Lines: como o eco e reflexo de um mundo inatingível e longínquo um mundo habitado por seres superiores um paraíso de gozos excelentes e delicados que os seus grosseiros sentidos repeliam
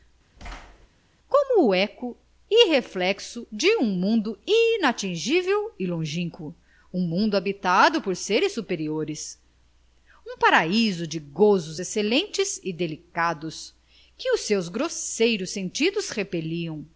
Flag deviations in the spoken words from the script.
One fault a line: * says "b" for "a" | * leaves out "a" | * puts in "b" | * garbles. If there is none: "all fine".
all fine